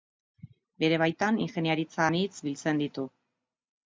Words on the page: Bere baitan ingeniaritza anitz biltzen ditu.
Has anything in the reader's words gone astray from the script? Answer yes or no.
no